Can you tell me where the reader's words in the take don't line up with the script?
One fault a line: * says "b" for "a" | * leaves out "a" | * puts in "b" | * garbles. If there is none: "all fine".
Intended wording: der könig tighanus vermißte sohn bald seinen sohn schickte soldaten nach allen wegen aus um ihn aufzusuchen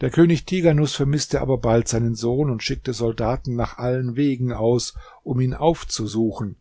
* says "aber" for "sohn"
* puts in "und"